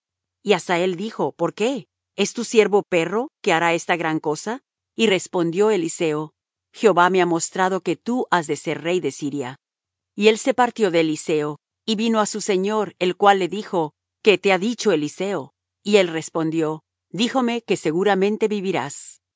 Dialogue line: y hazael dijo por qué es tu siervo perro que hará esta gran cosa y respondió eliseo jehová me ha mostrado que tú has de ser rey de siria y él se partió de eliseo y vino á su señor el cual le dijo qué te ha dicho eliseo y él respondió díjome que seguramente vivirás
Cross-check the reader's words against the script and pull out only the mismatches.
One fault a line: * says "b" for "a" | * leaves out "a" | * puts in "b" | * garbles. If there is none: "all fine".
all fine